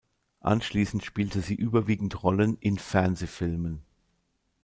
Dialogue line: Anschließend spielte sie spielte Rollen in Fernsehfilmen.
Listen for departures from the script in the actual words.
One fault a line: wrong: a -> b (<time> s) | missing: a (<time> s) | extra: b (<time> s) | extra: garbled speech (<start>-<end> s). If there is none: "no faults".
wrong: spielte -> überwiegend (1.5 s)